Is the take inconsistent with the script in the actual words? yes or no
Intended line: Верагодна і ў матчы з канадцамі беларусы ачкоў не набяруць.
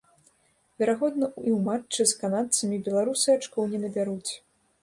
no